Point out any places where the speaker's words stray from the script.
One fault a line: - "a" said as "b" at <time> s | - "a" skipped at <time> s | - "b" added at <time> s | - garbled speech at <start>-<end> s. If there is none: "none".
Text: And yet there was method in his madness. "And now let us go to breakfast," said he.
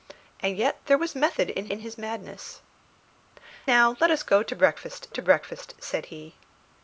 - "in" added at 1.7 s
- "And" skipped at 2.6 s
- "to breakfast" added at 5.1 s